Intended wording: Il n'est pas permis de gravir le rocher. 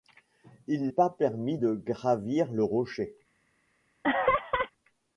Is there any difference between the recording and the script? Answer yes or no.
yes